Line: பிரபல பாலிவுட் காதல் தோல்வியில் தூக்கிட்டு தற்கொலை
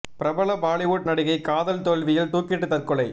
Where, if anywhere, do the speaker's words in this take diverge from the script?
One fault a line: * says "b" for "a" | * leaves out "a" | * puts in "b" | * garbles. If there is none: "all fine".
* puts in "நடிகை"